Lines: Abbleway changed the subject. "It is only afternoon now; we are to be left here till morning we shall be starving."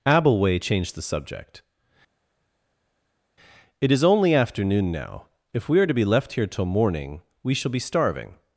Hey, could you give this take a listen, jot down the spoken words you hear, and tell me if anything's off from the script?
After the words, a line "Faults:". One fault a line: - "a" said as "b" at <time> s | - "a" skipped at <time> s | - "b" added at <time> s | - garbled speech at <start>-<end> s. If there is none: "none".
Abbleway changed the subject. "It is only afternoon now; if we are to be left here till morning we shall be starving."
Faults:
- "if" added at 5.5 s